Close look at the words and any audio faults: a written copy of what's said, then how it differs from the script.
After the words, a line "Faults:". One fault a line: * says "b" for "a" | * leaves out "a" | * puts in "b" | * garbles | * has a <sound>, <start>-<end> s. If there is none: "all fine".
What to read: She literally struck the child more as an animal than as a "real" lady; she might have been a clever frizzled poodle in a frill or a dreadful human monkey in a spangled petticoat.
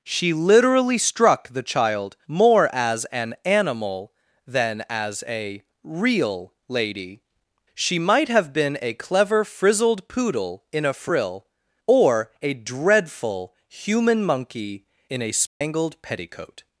She literally struck the child more as an animal than as a "real" lady; she might have been a clever frizzled poodle in a frill or a dreadful human monkey in a spangled petticoat.
Faults:
* has a dropout, 15.5-15.6 s